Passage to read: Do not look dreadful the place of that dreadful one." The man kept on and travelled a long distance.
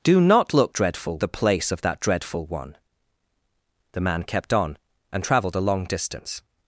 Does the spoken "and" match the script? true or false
true